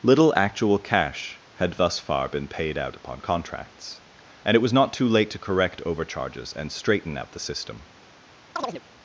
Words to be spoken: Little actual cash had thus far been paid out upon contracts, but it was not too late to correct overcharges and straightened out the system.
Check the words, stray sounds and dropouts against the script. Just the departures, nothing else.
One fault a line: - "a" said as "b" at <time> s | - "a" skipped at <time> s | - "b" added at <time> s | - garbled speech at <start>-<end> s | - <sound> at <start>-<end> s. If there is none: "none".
- "but" said as "and" at 4.4 s
- "straightened" said as "straighten" at 6.7 s
- chirp at 8.6-8.8 s